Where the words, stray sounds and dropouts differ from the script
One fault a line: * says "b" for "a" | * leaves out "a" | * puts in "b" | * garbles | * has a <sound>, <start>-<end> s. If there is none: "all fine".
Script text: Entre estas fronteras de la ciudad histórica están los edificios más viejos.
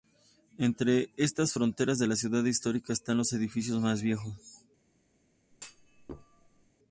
* has a thud, 5.5-6.7 s